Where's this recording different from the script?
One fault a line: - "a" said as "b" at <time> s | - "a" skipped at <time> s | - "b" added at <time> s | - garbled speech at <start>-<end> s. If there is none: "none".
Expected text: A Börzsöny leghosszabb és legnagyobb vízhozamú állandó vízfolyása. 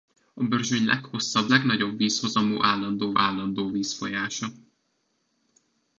- "és" skipped at 1.5 s
- "állandó" added at 3.2 s